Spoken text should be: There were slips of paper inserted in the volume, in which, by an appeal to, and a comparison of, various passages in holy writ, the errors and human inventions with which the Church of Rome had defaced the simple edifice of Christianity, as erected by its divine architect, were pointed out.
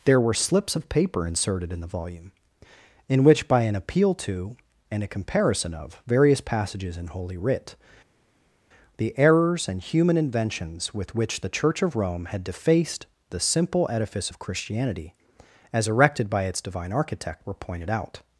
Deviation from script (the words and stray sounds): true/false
false